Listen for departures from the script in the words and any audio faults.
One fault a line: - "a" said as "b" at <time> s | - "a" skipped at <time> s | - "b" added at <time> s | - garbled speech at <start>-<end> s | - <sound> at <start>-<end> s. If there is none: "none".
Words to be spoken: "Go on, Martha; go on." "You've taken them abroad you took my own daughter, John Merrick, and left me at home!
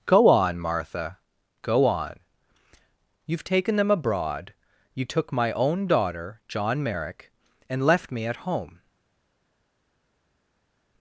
none